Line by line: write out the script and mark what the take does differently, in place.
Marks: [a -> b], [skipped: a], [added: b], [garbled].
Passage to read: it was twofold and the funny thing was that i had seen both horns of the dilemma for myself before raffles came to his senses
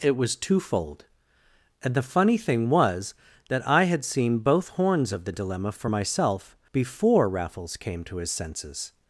it was twofold and the funny thing was that i had seen both horns of the dilemma for myself before raffles came to his senses